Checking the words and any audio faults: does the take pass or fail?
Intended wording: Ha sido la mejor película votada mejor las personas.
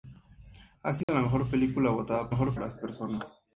fail